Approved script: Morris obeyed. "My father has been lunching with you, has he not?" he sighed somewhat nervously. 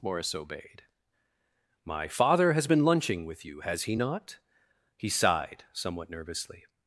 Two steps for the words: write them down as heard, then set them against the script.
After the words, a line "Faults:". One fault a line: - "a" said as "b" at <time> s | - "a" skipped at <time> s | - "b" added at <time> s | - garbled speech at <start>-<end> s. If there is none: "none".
Morris obeyed. "My father has been lunching with you, has he not?" he sighed somewhat nervously.
Faults:
none